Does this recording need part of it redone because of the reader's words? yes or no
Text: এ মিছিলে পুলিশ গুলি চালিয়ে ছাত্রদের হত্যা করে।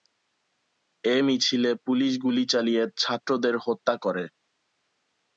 no